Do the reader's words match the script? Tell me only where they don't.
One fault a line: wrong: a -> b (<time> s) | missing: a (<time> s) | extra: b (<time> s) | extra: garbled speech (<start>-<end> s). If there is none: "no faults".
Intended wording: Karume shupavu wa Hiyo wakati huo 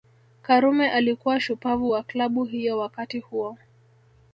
extra: alikuwa (0.9 s)
extra: Klabu (2.0 s)